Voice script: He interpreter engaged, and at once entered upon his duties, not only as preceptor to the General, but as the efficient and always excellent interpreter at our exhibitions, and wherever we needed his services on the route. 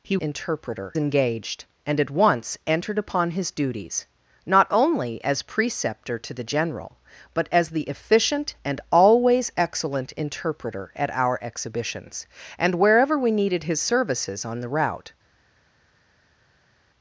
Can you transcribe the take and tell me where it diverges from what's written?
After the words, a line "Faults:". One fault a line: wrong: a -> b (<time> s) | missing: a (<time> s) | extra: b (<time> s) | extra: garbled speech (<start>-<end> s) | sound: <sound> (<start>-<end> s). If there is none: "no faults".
He interpreter engaged, and at once entered upon his duties, not only as preceptor to the General, but as the efficient and always excellent interpreter at our exhibitions, and wherever we needed his services on the route.
Faults:
no faults